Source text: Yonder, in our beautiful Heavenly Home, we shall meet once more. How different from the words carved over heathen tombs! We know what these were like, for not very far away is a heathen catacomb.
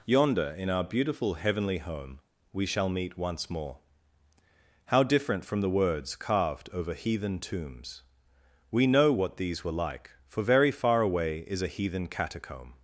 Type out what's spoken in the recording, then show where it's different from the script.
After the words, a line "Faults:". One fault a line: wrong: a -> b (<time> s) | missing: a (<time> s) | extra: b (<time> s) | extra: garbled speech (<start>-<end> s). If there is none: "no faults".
Yonder, in our beautiful Heavenly Home, we shall meet once more. How different from the words carved over heathen tombs! We know what these were like, for very far away is a heathen catacomb.
Faults:
missing: not (10.4 s)